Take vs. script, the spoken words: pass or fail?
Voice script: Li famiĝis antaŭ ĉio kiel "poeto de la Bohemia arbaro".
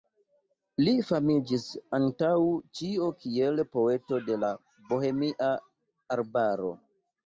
pass